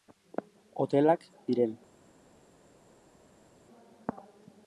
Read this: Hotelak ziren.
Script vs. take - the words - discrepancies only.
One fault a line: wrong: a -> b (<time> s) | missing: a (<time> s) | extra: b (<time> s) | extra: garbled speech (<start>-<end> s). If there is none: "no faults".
no faults